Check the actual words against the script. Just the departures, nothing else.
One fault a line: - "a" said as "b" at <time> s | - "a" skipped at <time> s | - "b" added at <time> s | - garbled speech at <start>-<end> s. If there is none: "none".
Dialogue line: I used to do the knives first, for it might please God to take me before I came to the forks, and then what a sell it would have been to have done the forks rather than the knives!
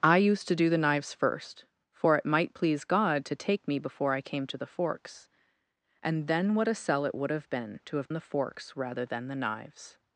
- "done" skipped at 8.1 s